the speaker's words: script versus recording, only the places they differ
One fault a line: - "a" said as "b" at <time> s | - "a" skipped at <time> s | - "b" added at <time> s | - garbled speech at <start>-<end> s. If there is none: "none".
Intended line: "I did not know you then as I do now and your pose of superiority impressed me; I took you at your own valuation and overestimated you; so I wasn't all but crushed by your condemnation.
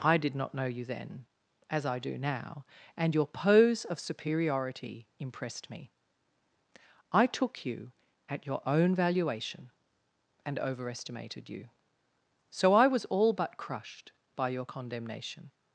- "wasn't" said as "was" at 12.9 s